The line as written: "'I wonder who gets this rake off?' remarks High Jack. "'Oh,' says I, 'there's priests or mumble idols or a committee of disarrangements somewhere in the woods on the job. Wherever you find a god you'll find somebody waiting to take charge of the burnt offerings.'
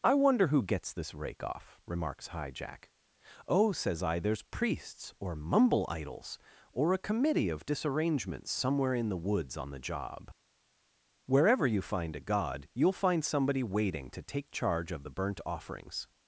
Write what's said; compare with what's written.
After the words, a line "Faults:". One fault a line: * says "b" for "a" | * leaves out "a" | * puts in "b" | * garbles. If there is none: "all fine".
"'I wonder who gets this rake off?' remarks High Jack. "'Oh,' says I, 'there's priests or mumble idols or a committee of disarrangements somewhere in the woods on the job. Wherever you find a god you'll find somebody waiting to take charge of the burnt offerings.'
Faults:
all fine